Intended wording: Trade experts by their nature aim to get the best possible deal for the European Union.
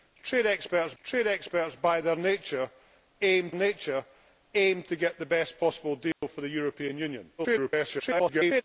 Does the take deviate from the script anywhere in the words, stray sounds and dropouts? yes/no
yes